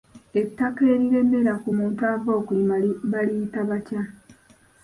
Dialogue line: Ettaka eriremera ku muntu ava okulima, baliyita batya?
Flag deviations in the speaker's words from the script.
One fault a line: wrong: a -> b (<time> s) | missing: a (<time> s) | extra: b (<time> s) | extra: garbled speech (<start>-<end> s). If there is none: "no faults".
no faults